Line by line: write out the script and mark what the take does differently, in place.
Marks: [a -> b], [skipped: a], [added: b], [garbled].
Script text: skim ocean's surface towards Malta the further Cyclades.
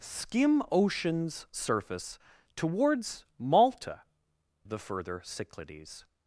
skim ocean's surface towards Malta the further Cyclades.